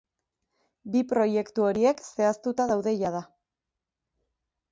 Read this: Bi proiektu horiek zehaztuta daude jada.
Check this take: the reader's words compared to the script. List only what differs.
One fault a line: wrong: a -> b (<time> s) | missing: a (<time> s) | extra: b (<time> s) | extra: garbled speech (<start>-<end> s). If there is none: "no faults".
no faults